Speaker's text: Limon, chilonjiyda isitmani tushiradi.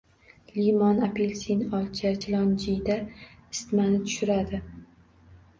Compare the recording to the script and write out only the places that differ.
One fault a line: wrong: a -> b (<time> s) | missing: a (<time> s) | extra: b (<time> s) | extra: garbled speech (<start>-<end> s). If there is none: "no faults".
extra: apelsin olcha (1.1 s)